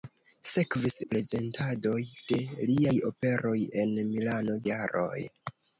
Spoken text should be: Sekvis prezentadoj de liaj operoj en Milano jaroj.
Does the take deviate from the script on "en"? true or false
false